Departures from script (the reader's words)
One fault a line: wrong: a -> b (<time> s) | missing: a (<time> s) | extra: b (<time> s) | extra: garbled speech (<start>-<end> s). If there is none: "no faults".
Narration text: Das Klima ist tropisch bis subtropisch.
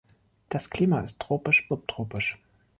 missing: bis (1.7 s)